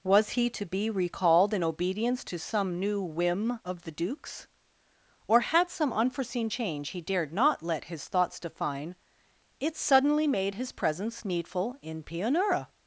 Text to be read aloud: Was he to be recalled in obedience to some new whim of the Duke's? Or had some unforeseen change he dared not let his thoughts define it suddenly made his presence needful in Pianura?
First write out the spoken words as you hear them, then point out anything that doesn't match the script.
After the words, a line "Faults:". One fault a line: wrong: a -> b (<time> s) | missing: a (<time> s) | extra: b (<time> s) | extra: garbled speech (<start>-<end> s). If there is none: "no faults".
Was he to be recalled in obedience to some new whim of the Duke's? Or had some unforeseen change he dared not let his thoughts define it suddenly made his presence needful in Pianura?
Faults:
no faults